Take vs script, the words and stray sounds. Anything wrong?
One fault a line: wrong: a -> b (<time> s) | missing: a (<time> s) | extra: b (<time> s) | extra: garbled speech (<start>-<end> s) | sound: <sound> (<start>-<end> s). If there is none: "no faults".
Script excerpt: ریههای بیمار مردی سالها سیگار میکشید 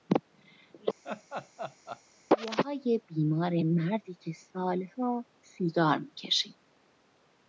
sound: laugh (1.0-2.0 s)
extra: که (4.1 s)